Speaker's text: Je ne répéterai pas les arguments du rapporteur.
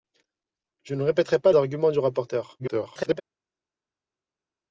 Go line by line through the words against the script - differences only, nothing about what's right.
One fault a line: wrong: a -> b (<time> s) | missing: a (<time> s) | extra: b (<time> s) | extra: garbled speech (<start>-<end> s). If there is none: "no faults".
missing: les (1.5 s)
extra: garbled speech (2.6-3.2 s)